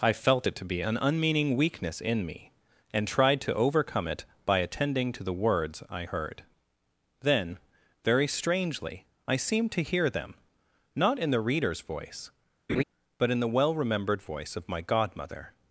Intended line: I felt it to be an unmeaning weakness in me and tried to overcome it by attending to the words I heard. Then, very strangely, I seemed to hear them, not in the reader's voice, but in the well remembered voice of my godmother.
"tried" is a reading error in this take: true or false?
false